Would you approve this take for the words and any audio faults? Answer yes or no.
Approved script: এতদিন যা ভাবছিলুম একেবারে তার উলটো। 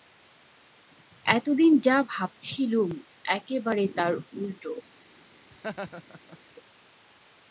no